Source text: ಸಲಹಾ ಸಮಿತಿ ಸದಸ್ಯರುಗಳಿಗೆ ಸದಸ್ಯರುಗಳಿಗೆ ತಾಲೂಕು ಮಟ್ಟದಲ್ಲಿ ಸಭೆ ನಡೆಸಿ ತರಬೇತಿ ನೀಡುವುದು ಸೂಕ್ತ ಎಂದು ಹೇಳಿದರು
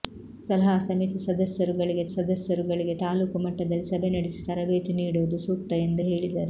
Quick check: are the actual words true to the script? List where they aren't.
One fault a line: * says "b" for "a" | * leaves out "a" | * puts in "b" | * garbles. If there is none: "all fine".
all fine